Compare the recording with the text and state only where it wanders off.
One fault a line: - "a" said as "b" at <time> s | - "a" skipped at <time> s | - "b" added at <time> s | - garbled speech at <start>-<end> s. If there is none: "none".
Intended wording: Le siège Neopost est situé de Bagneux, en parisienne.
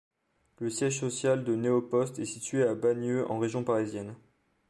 - "social de" added at 1.0 s
- "de" said as "à" at 2.6 s
- "région" added at 3.4 s